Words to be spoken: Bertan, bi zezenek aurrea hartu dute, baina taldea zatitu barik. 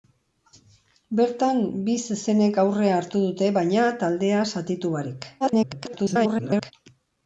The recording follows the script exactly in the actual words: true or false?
false